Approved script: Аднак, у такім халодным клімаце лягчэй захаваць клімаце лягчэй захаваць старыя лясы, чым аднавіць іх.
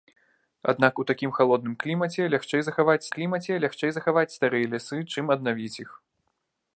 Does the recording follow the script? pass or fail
pass